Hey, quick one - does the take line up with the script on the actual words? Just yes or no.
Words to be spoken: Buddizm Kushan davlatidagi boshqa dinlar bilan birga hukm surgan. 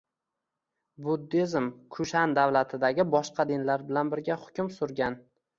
yes